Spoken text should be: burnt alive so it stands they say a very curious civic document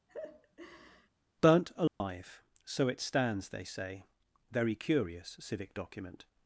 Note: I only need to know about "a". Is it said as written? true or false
false